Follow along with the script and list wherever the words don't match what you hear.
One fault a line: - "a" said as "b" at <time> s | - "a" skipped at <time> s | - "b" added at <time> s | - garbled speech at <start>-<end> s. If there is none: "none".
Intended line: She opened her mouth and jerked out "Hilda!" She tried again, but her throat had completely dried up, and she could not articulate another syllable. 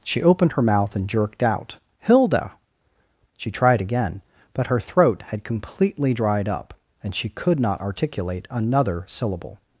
none